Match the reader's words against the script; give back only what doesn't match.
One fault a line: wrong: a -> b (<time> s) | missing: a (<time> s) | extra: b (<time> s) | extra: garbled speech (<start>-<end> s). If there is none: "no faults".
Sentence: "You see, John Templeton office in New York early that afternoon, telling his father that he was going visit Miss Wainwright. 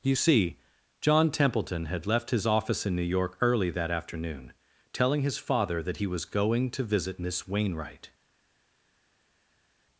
extra: had left his (1.9 s)
extra: to (6.7 s)